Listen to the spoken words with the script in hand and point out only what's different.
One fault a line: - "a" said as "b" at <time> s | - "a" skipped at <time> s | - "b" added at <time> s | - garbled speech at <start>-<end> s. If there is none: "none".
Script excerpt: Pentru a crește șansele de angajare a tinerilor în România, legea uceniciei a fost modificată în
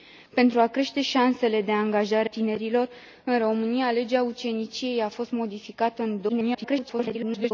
- "a" skipped at 2.3 s
- garbled speech at 6.3-7.5 s